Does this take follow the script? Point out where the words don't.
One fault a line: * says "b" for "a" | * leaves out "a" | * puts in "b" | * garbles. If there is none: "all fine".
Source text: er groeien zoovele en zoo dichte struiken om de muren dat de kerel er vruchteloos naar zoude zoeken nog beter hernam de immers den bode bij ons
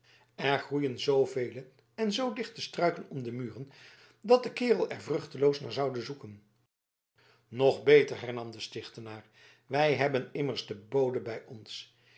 * puts in "stichtenaar wij hebben"